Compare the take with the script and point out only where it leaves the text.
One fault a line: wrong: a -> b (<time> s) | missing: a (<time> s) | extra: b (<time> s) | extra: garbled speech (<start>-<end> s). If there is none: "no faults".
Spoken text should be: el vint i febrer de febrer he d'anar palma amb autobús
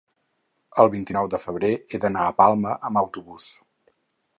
wrong: febrer -> nou (1.1 s)
extra: a (2.3 s)